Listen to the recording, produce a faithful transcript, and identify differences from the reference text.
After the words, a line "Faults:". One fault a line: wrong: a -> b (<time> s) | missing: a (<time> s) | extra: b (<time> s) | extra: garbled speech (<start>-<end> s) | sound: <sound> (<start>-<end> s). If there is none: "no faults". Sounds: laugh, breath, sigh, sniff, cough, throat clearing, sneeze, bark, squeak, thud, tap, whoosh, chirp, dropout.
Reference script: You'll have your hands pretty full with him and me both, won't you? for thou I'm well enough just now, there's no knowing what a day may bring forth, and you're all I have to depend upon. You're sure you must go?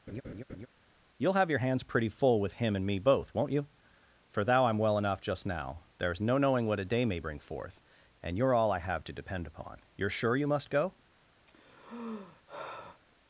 You'll have your hands pretty full with him and me both, won't you? for thou I'm well enough just now, there's no knowing what a day may bring forth, and you're all I have to depend upon. You're sure you must go?
Faults:
sound: laugh (0.1-0.7 s)
sound: sigh (11.5-13.0 s)